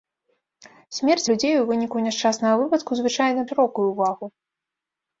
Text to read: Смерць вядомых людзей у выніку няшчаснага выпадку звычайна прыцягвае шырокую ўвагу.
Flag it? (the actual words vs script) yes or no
yes